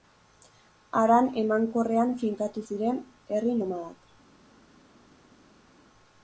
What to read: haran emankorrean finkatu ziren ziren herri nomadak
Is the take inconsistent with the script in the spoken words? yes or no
yes